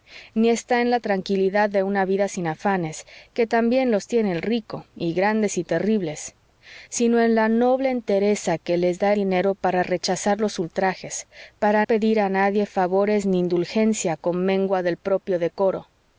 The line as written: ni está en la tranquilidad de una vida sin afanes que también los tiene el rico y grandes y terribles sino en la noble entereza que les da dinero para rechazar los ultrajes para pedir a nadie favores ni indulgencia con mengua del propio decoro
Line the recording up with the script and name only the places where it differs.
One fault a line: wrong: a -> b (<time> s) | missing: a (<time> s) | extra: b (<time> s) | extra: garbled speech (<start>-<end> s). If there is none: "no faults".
no faults